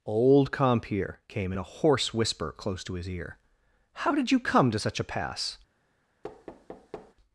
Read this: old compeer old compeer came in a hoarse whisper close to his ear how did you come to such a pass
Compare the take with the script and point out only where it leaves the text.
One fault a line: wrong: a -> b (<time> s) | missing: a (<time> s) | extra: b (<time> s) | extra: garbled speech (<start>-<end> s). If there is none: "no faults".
missing: old compeer (1.2 s)